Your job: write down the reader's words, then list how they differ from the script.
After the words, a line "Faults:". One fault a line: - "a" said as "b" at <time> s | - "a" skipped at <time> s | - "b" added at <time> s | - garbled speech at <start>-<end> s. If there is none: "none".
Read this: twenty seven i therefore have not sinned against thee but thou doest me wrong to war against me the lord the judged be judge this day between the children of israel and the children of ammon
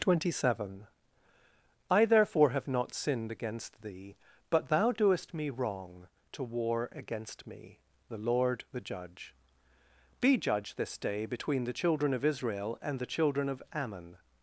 twenty seven i therefore have not sinned against thee but thou doest me wrong to war against me the lord the judge be judge this day between the children of israel and the children of ammon
Faults:
- "judged" said as "judge" at 8.8 s